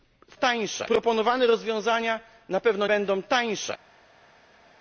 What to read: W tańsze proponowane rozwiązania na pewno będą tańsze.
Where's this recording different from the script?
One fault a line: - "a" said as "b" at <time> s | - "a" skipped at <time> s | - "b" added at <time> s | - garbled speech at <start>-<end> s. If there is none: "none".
none